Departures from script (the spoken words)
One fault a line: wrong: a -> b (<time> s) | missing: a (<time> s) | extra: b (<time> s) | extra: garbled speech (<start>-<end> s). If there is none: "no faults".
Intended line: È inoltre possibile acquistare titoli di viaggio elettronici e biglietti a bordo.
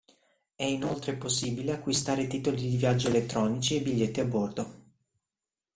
no faults